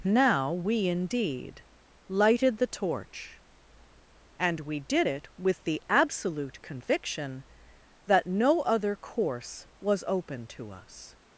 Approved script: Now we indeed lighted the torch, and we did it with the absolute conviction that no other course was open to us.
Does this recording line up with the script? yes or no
yes